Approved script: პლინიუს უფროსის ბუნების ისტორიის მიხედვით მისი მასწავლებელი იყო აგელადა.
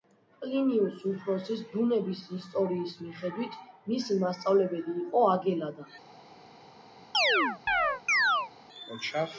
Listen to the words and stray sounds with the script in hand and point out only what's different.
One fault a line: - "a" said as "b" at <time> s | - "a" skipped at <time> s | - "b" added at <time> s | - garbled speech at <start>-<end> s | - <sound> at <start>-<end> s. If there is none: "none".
- chirp at 7.1-8.5 s